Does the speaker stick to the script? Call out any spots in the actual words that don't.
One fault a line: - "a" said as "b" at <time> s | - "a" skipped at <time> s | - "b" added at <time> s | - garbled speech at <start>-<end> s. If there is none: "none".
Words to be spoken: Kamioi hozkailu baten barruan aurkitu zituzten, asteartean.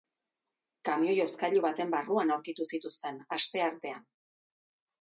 none